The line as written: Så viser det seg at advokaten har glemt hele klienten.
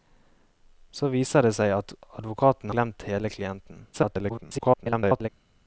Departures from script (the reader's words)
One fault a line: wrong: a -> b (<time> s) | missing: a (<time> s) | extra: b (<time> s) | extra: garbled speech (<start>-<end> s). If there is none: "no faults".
missing: har (2.7 s)
extra: garbled speech (3.9-5.3 s)